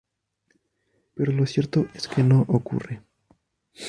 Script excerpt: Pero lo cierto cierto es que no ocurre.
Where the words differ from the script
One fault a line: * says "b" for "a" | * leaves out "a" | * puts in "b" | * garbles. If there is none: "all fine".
* leaves out "cierto"